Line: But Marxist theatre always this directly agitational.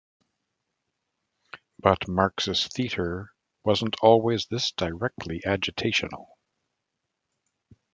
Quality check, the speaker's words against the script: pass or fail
fail